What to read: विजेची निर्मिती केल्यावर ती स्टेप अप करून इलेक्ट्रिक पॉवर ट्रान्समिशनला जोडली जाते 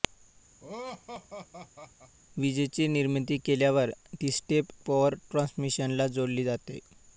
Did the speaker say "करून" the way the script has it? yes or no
no